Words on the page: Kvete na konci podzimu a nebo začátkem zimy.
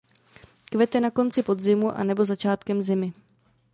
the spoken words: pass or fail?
pass